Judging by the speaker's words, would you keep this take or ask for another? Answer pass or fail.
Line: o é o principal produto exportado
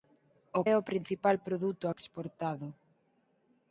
pass